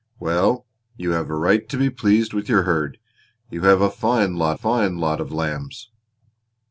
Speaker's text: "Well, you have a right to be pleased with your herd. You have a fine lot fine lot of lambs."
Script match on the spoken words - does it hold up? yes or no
yes